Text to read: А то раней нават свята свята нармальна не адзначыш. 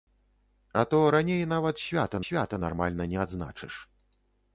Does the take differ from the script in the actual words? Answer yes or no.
no